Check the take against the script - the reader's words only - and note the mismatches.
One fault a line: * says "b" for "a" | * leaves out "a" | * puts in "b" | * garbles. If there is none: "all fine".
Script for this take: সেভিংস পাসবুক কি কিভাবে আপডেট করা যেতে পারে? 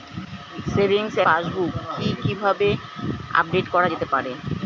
all fine